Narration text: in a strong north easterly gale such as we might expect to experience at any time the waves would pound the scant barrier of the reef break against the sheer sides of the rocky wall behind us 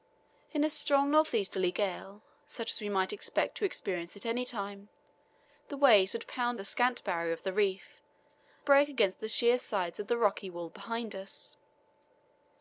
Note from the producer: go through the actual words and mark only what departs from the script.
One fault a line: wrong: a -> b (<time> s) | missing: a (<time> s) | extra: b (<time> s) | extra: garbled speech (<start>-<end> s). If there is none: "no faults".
no faults